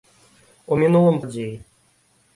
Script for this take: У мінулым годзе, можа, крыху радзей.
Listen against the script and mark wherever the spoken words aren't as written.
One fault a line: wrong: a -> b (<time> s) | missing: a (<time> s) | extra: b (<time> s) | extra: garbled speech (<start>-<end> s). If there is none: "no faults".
missing: годзе можа крыху (1.2 s)